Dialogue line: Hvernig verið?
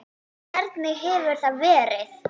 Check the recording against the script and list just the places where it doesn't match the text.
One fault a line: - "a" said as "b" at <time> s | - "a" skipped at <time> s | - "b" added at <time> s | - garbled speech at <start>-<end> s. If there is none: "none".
- "hefur það" added at 1.0 s